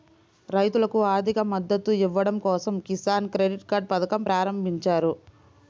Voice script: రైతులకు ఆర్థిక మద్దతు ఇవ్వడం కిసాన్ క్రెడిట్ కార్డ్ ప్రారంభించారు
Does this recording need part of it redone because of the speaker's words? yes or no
yes